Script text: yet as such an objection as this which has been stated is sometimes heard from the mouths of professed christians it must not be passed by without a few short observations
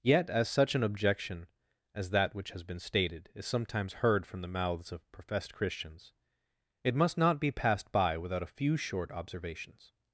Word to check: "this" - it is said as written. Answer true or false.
false